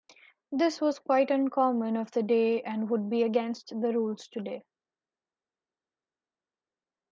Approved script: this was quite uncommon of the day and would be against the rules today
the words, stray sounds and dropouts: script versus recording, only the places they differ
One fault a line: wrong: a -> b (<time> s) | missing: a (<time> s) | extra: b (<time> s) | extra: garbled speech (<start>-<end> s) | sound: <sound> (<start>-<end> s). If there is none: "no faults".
no faults